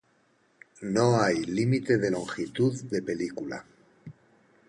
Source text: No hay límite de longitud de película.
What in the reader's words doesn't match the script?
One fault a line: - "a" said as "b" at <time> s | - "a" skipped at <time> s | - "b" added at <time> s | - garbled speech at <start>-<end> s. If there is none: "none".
none